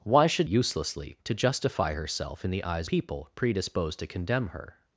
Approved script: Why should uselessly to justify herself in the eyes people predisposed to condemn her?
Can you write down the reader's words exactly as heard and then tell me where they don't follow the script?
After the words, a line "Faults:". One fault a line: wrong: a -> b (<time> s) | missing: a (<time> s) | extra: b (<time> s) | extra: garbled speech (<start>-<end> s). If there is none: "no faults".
Why should uselessly to justify herself in the eyes people predisposed to condemn her?
Faults:
no faults